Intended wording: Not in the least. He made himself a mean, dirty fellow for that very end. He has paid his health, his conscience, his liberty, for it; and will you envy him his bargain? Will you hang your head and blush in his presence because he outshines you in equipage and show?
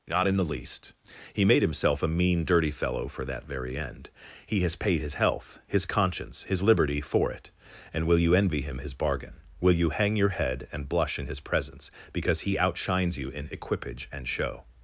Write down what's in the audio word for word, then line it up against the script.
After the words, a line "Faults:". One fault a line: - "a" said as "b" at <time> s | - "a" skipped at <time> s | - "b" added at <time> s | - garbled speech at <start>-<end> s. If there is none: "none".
Not in the least. He made himself a mean, dirty fellow for that very end. He has paid his health, his conscience, his liberty, for it; and will you envy him his bargain? Will you hang your head and blush in his presence because he outshines you in equipage and show?
Faults:
none